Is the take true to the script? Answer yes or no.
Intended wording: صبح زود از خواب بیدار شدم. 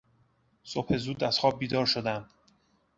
yes